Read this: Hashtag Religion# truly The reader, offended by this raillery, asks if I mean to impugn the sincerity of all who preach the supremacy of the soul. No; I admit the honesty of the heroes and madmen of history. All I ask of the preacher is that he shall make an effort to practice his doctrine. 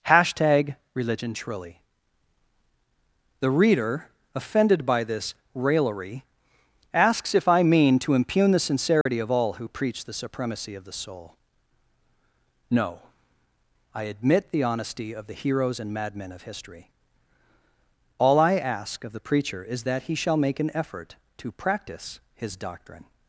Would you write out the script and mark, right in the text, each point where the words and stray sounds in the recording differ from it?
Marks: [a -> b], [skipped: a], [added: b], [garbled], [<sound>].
Hashtag Religion# truly The reader, offended by this raillery, asks if I mean to impugn the sincerity [dropout] of all who preach the supremacy of the soul. No; I admit the honesty of the heroes and madmen of history. All I ask of the preacher is that he shall make an effort to practice his doctrine.